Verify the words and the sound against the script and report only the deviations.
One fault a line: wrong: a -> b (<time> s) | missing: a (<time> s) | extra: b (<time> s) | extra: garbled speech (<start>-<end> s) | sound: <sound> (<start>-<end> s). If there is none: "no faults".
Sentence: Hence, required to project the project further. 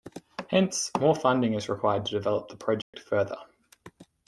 extra: more funding is (1.0 s)
wrong: project -> develop (2.1 s)
sound: dropout (2.8-2.9 s)